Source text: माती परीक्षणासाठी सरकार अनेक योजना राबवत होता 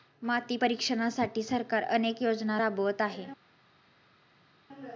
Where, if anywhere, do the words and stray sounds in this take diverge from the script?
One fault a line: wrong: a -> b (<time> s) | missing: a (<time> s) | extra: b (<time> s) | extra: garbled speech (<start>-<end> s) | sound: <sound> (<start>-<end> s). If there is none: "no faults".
wrong: होता -> आहे (3.0 s)